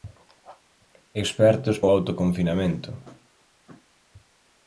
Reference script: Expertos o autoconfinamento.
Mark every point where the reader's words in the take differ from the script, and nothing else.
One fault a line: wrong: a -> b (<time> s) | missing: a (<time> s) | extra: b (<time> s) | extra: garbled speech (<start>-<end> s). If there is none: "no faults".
no faults